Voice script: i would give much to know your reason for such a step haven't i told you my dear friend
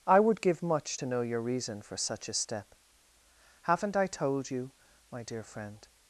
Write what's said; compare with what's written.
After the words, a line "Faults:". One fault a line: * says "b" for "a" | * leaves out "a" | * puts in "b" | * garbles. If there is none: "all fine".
i would give much to know your reason for such a step haven't i told you my dear friend
Faults:
all fine